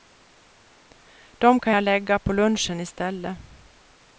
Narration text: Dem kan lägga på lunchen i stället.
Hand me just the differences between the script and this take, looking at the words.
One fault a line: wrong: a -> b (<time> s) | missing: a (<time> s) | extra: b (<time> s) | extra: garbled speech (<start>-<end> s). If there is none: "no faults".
extra: jag (1.7 s)